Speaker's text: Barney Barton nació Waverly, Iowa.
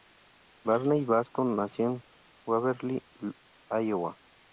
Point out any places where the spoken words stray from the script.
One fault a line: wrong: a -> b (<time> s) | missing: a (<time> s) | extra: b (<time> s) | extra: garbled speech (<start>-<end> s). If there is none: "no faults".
extra: en (1.9 s)